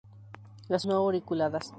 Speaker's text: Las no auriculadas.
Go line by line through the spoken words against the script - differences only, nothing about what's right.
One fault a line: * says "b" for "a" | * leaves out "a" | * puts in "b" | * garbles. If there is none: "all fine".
all fine